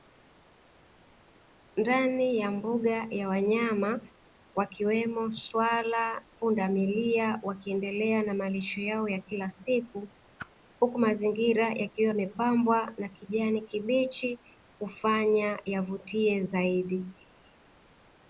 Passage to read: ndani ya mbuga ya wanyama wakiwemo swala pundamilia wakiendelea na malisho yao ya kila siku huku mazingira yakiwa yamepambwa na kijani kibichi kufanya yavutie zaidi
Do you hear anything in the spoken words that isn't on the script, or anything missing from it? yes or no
no